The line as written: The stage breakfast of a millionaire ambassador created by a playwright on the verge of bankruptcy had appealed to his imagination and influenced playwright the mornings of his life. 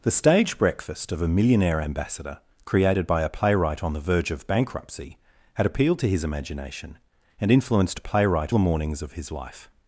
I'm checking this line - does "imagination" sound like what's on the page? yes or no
yes